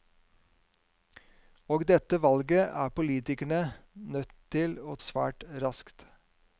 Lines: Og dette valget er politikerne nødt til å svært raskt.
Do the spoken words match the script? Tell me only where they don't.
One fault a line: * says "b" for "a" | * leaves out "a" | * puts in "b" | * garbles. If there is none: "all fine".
all fine